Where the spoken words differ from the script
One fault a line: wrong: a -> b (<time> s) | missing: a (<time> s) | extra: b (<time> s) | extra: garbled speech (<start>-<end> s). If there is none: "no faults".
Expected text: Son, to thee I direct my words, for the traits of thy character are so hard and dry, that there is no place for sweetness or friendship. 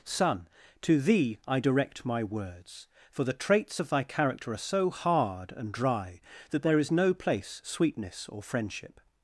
missing: for (7.6 s)